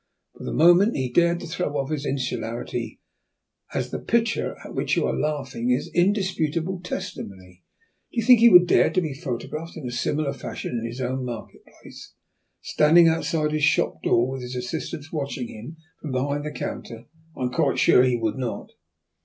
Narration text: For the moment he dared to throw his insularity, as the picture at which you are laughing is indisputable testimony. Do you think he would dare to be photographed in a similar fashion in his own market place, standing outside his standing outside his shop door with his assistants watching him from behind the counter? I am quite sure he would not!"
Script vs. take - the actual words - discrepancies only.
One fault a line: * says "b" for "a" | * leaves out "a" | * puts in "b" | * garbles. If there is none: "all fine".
* puts in "off"
* leaves out "standing outside his"